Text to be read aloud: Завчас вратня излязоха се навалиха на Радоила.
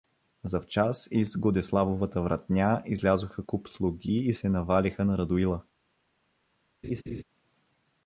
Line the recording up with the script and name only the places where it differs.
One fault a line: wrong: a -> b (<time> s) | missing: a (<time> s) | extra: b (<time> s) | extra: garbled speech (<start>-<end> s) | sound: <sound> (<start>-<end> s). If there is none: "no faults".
extra: из Годеславовата (1.1 s)
extra: куп слуги и (3.4 s)
sound: laugh (6.8-7.2 s)